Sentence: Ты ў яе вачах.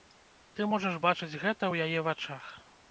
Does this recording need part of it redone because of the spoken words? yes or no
yes